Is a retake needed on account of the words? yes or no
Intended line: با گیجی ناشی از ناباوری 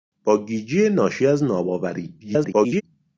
yes